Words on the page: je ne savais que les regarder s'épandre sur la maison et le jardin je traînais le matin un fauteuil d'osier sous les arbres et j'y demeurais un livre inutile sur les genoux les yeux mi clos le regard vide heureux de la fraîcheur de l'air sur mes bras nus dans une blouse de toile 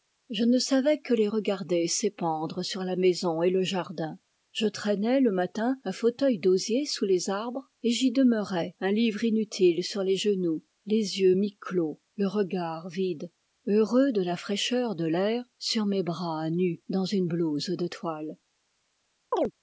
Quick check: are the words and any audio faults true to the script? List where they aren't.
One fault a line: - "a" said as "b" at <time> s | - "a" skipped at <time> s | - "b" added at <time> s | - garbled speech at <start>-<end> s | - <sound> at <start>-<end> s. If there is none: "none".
- chirp at 19.3-19.5 s